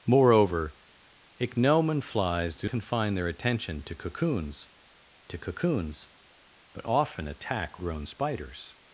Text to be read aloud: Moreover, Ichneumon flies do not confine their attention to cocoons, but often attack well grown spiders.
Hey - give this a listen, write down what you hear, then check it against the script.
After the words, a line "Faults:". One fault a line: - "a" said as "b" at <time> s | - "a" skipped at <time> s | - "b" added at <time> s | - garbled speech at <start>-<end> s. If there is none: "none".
Moreover, Ichneumon flies do confine their attention to cocoons to cocoons, but often attack grown spiders.
Faults:
- "not" skipped at 2.7 s
- "to cocoons" added at 5.3 s
- "well" skipped at 7.8 s